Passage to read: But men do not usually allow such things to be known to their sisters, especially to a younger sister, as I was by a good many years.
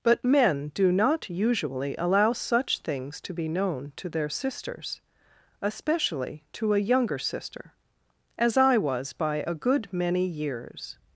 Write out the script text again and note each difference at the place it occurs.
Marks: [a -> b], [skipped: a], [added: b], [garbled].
But men do not usually allow such things to be known to their sisters, especially to a younger sister, as I was by a good many years.